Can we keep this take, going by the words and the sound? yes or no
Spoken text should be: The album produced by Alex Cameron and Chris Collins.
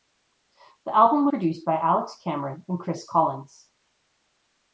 yes